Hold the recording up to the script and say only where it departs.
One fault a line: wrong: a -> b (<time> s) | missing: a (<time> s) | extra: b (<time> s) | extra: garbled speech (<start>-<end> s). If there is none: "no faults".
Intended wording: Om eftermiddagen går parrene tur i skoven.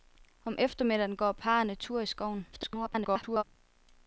extra: garbled speech (2.5-3.4 s)